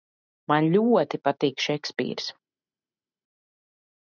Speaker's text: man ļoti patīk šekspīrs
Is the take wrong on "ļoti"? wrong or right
right